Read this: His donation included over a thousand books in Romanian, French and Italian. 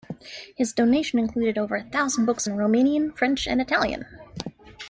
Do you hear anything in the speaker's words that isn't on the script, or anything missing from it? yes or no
no